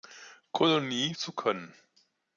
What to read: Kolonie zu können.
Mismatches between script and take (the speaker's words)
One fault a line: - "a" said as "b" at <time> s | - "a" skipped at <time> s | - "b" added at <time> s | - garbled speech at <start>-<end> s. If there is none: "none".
none